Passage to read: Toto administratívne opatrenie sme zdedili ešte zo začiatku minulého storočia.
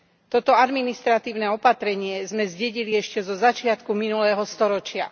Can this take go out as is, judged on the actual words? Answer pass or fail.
pass